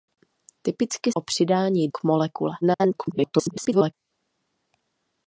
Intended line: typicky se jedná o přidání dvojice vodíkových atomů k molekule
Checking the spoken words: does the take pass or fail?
fail